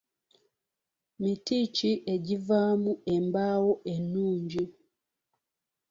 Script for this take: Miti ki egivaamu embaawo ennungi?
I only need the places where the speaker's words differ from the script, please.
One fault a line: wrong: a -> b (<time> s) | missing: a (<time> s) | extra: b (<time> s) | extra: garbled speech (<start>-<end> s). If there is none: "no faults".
no faults